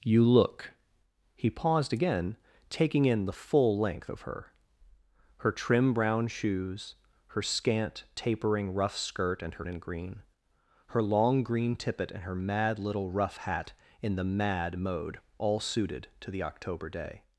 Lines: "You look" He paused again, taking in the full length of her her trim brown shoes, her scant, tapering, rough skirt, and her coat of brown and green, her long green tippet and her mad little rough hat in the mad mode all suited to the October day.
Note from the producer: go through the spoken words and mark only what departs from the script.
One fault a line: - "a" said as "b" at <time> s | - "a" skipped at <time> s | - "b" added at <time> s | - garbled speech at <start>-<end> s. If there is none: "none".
- "coat of brown" skipped at 9.7 s